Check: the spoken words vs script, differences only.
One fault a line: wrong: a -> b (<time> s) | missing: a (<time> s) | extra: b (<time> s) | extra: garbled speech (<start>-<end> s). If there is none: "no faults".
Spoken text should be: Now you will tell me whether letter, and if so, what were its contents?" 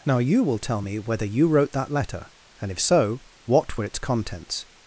extra: you wrote that (1.3 s)